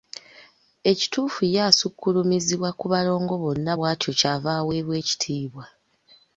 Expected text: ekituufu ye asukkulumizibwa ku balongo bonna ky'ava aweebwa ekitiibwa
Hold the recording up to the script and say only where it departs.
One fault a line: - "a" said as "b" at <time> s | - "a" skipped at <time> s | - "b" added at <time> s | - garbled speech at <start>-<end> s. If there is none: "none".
- "bw'atyo" added at 3.8 s